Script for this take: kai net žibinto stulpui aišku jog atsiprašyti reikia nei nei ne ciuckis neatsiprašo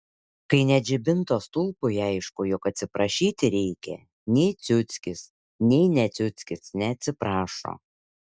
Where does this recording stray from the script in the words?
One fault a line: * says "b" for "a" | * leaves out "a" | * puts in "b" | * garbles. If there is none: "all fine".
* puts in "ciuckis"